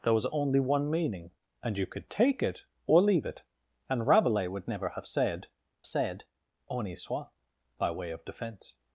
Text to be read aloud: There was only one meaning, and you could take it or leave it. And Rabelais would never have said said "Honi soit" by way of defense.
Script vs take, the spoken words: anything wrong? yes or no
no